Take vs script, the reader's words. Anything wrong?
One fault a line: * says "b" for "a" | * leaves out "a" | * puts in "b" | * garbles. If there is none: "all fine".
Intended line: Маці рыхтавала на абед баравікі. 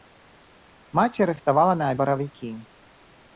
* leaves out "абед"